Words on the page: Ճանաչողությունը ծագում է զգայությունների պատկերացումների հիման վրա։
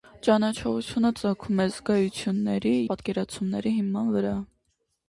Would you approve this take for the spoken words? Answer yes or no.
yes